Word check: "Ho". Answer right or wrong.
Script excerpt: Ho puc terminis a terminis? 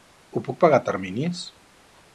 right